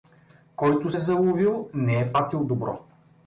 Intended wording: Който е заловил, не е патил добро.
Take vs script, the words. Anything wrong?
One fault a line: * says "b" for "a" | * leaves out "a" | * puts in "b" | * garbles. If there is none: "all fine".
all fine